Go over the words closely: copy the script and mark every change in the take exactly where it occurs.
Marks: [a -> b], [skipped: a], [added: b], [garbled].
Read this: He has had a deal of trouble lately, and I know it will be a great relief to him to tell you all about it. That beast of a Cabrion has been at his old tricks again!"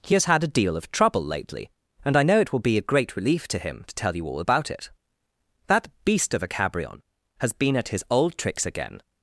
He has had a deal of trouble lately, and I know it will be a great relief to him to tell you all about it. That beast of a Cabrion has been at his old tricks again!"